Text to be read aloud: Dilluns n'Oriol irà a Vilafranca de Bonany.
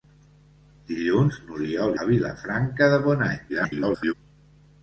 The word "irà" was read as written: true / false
false